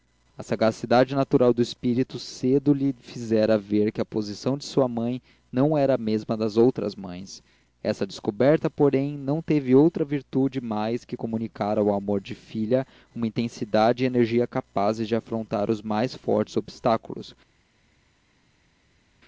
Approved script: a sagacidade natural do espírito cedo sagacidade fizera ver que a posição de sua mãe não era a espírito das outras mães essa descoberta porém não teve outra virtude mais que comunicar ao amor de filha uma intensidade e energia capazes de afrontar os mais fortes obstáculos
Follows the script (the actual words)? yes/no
no